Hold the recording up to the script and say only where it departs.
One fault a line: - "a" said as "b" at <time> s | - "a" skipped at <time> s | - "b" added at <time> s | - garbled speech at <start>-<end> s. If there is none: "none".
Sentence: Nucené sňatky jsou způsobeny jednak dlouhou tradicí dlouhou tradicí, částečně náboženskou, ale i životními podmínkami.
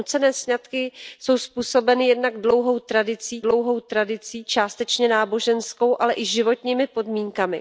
none